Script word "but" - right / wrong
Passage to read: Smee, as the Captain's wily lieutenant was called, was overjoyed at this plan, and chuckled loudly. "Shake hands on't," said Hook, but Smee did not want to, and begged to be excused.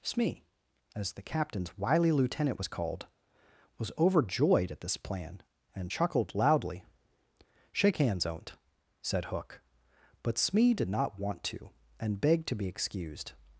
right